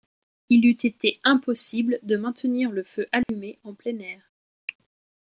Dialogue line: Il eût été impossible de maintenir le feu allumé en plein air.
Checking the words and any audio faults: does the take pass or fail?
fail